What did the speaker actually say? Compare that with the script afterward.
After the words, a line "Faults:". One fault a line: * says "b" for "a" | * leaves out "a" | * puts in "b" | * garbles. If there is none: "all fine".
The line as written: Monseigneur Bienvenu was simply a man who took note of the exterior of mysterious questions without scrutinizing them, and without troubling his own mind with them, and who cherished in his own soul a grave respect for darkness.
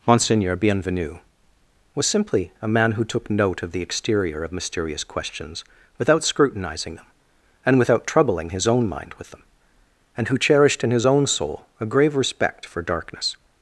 Monseigneur Bienvenu was simply a man who took note of the exterior of mysterious questions without scrutinizing them, and without troubling his own mind with them, and who cherished in his own soul a grave respect for darkness.
Faults:
all fine